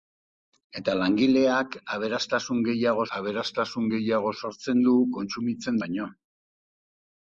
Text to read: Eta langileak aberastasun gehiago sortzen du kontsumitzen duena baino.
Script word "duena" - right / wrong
wrong